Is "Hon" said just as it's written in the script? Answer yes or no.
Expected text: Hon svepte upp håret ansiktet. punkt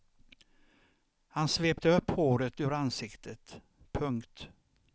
no